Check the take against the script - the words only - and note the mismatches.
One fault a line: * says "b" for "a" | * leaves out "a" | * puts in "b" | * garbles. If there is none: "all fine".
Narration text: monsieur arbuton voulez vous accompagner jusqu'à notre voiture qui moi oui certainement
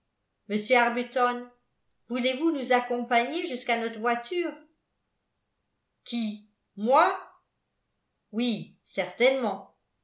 * puts in "nous"